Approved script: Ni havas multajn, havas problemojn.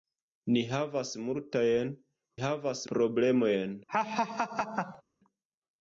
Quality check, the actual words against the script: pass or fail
pass